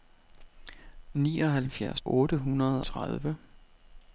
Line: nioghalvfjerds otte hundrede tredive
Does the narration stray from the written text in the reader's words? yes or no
no